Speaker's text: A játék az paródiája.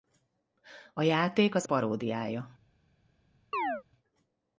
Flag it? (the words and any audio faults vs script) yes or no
yes